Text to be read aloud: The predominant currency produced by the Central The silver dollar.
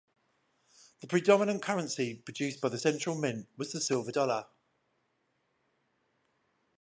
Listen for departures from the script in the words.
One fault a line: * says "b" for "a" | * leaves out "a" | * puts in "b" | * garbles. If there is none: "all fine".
* puts in "Mint was"